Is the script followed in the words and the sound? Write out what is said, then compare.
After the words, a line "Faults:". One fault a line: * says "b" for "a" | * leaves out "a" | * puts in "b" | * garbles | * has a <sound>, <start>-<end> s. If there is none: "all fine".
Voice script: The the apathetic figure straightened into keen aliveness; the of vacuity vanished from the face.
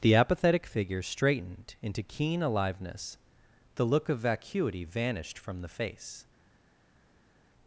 The apathetic figure straightened into keen aliveness; the look of vacuity vanished from the face.
Faults:
* leaves out "the"
* puts in "look"